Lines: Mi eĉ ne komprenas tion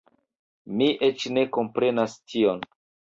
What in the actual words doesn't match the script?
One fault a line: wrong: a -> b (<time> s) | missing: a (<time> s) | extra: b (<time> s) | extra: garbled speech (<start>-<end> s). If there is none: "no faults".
no faults